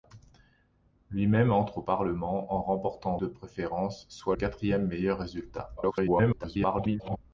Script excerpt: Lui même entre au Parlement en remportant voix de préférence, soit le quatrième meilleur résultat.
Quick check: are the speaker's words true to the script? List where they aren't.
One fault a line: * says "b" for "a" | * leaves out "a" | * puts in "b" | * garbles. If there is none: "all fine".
* leaves out "voix"
* leaves out "le"
* garbles